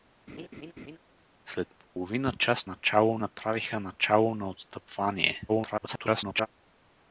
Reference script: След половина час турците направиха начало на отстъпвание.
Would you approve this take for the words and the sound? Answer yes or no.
no